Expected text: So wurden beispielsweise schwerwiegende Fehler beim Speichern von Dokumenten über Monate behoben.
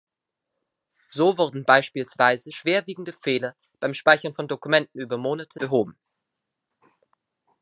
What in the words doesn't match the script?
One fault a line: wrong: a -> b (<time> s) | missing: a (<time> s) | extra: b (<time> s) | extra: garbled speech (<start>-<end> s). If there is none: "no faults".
no faults